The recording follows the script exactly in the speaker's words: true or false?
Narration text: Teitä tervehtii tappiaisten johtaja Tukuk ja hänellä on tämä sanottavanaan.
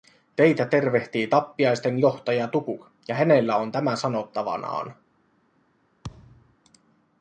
true